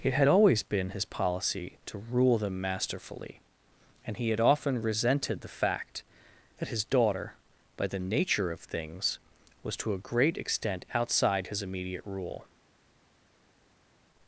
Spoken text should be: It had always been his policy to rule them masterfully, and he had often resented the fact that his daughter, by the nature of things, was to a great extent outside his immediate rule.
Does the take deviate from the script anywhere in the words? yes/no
no